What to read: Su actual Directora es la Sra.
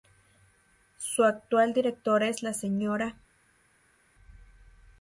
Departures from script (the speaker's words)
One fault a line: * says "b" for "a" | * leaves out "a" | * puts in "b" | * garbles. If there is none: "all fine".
all fine